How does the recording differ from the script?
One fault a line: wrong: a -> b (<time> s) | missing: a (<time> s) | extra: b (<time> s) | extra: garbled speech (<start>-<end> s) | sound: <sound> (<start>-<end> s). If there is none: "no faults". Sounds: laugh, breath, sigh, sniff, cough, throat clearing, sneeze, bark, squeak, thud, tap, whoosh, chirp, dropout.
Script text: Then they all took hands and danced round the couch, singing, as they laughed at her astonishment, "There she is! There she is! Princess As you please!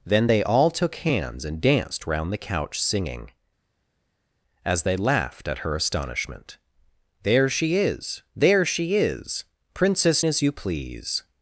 no faults